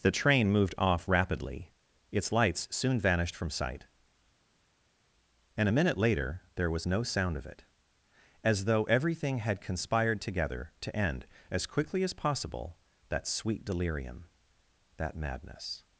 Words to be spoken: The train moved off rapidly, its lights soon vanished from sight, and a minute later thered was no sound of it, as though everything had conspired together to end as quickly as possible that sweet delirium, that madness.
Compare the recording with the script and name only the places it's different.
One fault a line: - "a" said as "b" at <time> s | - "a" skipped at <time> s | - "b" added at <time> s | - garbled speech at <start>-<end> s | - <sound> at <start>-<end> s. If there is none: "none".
- "thered" said as "there" at 6.5 s